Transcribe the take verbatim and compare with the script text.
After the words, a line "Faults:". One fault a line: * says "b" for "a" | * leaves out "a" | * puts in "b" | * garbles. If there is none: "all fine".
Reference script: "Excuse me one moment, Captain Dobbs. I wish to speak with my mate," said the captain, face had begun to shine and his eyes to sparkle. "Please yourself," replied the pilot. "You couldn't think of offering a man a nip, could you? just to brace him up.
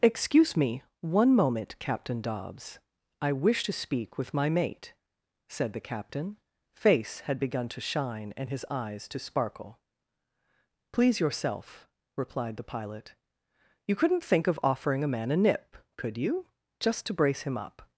"Excuse me one moment, Captain Dobbs. I wish to speak with my mate," said the captain, face had begun to shine and his eyes to sparkle. "Please yourself," replied the pilot. "You couldn't think of offering a man a nip, could you? just to brace him up.
Faults:
all fine